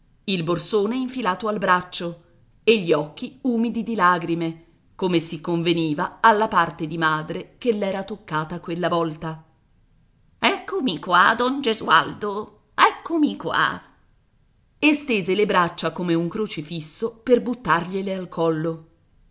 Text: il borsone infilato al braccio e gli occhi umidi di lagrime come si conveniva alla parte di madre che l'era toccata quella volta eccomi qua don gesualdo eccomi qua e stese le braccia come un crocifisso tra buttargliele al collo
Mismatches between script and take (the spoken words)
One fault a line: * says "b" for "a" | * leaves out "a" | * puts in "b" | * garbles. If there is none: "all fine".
* says "per" for "tra"